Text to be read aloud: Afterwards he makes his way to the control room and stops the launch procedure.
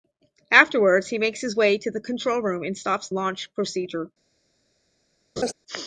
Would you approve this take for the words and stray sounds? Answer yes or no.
no